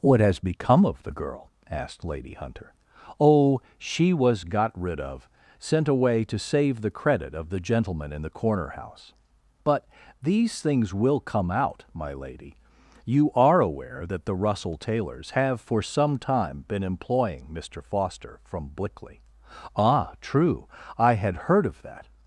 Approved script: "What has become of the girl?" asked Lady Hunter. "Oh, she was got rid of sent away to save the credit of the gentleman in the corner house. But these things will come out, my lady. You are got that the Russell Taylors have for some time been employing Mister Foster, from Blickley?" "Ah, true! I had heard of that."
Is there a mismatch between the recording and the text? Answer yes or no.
yes